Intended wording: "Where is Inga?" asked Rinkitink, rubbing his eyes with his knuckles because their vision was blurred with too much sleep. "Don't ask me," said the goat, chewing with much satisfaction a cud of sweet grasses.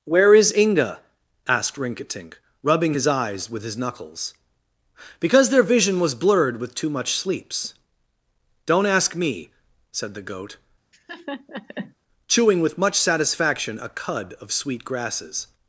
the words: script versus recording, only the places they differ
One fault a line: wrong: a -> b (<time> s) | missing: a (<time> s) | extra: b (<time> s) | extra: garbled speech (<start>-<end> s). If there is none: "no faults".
wrong: sleep -> sleeps (7.2 s)